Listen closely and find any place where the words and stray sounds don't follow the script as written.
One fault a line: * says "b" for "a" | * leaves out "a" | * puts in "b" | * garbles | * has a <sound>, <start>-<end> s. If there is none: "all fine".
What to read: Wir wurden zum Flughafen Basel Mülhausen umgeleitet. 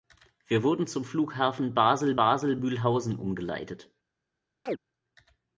* puts in "Basel"
* has a chirp, 4.7-4.8 s